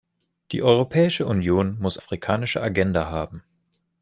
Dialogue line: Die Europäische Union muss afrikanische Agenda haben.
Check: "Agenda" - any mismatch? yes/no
no